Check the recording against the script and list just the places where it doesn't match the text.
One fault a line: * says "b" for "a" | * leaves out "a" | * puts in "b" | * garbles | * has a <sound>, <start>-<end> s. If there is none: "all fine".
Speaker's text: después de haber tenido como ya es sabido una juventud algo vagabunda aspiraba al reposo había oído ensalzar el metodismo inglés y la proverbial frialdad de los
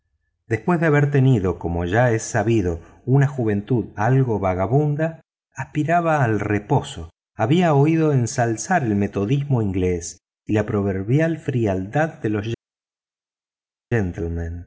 all fine